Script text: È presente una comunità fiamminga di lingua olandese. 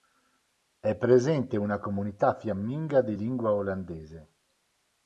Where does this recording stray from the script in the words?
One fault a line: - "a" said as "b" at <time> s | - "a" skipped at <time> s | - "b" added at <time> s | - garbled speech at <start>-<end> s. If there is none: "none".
none